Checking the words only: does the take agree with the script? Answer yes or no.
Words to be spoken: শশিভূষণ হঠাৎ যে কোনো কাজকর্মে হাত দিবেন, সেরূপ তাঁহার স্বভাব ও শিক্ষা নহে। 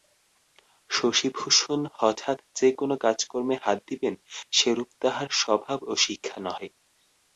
yes